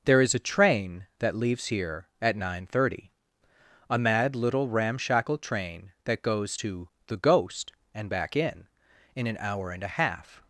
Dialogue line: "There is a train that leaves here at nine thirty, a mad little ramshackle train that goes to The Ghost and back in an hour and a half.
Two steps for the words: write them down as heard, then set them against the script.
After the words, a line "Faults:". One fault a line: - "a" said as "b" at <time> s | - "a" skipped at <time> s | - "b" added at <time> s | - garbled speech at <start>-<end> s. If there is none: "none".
"There is a train that leaves here at nine thirty, a mad little ramshackle train that goes to The Ghost and back in in an hour and a half.
Faults:
- "in" added at 9.1 s